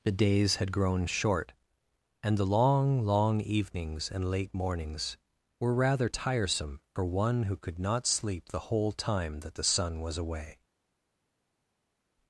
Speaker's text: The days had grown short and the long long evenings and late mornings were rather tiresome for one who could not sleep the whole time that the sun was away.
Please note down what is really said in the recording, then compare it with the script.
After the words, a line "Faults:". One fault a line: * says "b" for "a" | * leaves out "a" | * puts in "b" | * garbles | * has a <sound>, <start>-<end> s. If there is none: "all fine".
The days had grown short and the long long evenings and late mornings were rather tiresome for one who could not sleep the whole time that the sun was away.
Faults:
all fine